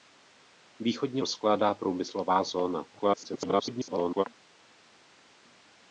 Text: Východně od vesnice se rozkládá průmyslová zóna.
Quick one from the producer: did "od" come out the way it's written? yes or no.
no